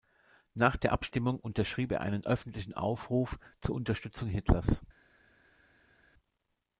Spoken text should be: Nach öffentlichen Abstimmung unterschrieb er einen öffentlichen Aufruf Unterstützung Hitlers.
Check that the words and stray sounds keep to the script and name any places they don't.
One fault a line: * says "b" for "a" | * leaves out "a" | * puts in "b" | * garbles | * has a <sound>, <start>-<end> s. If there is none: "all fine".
* says "der" for "öffentlichen"
* puts in "zur"